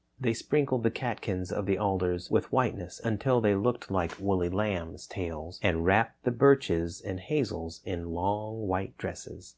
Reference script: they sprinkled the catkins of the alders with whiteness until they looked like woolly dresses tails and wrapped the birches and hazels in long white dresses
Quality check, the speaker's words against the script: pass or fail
fail